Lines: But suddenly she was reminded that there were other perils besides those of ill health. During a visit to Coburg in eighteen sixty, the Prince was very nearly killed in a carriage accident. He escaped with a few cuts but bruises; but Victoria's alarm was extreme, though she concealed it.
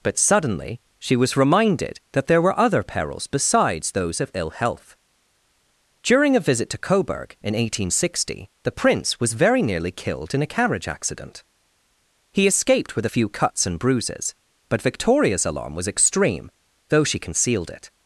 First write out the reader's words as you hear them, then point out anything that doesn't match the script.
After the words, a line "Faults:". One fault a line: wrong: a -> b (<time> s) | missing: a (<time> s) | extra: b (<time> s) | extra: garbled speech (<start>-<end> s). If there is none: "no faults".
But suddenly she was reminded that there were other perils besides those of ill health. During a visit to Coburg in eighteen sixty, the Prince was very nearly killed in a carriage accident. He escaped with a few cuts and bruises; but Victoria's alarm was extreme, though she concealed it.
Faults:
wrong: but -> and (13.6 s)